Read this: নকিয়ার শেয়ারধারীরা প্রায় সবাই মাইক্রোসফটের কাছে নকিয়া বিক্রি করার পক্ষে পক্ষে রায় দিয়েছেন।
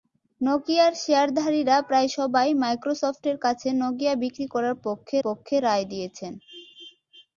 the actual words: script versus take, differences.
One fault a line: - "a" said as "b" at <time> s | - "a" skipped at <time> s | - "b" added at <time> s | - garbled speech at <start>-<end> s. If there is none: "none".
none